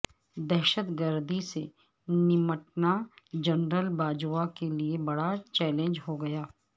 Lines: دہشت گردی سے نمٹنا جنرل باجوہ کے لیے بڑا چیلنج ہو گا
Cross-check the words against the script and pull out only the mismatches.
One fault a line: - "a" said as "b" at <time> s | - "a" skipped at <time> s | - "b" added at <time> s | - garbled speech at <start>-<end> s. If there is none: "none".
none